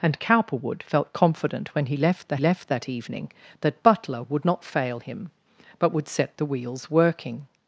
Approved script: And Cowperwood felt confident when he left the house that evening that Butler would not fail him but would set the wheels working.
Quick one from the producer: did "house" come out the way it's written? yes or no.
no